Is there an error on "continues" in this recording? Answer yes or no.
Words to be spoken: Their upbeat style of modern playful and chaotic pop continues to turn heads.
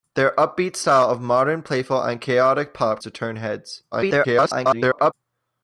yes